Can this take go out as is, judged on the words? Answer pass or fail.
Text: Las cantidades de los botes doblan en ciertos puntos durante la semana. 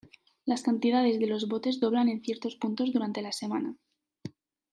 pass